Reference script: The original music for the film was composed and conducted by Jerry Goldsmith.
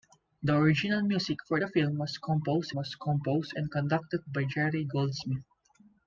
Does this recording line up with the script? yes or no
no